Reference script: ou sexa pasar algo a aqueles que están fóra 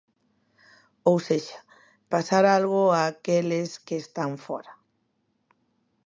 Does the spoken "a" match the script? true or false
true